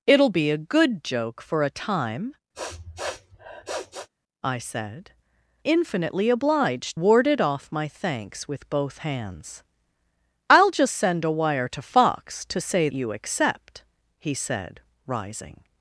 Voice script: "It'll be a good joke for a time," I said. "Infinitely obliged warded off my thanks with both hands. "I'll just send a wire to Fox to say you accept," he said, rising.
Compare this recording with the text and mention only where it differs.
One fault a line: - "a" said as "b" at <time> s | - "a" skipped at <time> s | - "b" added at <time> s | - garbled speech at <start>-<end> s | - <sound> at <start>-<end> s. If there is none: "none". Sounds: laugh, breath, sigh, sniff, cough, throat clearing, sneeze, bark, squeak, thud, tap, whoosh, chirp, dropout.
- sniff at 2.5-4.1 s